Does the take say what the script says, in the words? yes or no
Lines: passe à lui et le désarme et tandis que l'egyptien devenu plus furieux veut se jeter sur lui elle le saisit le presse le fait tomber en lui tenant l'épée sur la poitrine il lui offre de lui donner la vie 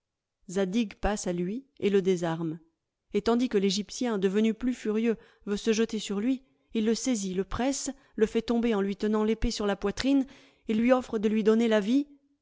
no